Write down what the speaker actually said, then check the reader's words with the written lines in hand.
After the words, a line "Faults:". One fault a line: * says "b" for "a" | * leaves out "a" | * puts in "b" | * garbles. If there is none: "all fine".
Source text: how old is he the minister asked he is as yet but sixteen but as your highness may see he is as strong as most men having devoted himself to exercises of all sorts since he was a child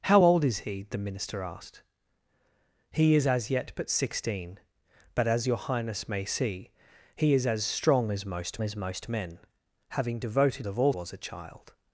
how old is he the minister asked he is as yet but sixteen but as your highness may see he is as strong as most as most men having devoted of all was a child
Faults:
* puts in "as most"
* leaves out "himself to exercises"
* leaves out "sorts since he"